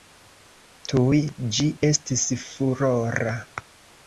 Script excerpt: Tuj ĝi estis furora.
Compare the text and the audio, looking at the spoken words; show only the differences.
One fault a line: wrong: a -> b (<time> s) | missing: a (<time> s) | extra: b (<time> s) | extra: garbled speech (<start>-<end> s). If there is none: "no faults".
no faults